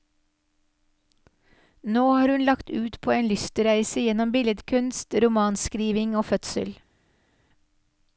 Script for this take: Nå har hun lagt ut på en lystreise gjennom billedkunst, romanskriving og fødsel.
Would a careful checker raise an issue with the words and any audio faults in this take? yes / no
no